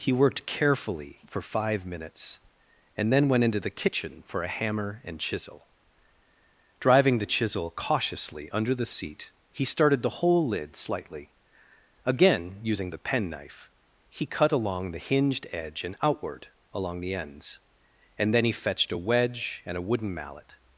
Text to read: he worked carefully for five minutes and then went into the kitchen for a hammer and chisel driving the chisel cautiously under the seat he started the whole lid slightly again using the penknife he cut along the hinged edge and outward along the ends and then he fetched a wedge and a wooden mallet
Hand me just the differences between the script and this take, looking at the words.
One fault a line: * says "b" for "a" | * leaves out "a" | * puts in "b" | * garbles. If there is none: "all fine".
all fine